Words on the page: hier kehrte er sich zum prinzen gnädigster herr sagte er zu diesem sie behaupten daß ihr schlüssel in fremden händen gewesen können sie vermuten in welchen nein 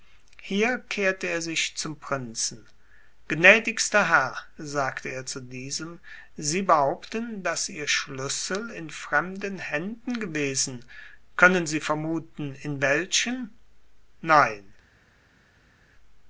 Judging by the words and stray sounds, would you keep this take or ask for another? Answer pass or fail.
pass